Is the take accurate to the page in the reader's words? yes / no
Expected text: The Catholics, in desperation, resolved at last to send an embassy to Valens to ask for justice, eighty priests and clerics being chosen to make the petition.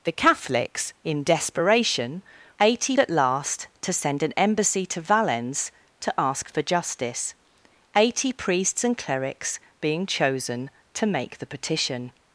no